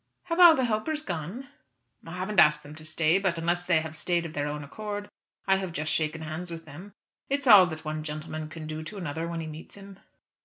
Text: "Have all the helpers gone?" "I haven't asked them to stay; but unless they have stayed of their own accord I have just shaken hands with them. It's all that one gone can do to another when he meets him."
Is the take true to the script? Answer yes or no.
no